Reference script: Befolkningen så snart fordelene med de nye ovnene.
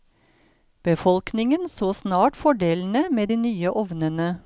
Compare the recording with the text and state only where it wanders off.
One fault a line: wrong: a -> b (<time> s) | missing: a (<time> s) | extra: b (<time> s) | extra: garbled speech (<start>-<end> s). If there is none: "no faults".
no faults